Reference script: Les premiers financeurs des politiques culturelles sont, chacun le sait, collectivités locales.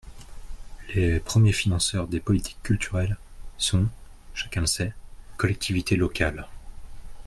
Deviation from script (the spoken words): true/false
false